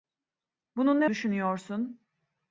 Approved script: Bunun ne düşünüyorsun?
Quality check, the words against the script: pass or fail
pass